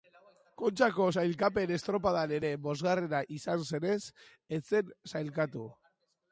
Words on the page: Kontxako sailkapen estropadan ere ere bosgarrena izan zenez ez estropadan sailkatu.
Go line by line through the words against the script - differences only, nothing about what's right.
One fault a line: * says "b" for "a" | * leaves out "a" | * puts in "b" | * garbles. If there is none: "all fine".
* leaves out "ere"
* says "zen" for "estropadan"